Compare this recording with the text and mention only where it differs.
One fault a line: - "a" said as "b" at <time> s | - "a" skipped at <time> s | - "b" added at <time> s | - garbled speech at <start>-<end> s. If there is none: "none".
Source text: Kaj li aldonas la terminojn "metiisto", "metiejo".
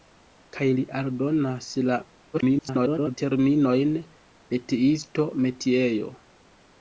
- garbled speech at 2.3-3.2 s